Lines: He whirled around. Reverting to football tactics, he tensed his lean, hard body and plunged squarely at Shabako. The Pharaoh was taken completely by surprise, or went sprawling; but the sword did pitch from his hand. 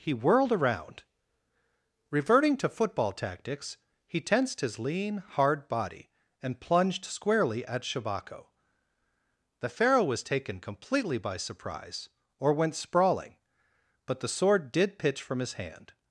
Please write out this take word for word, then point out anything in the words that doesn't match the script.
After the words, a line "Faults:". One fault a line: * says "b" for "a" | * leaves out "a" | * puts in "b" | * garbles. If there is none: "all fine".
He whirled around. Reverting to football tactics, he tensed his lean, hard body and plunged squarely at Shabako. The Pharaoh was taken completely by surprise, or went sprawling; but the sword did pitch from his hand.
Faults:
all fine